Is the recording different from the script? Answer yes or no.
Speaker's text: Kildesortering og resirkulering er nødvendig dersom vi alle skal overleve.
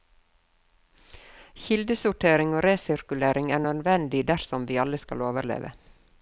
no